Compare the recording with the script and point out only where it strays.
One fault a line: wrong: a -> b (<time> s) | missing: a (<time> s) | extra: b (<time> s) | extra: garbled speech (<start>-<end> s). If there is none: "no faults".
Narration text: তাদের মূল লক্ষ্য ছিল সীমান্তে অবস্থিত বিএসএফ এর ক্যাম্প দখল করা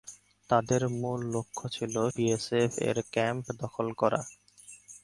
missing: সীমান্তে অবস্থিত (1.9 s)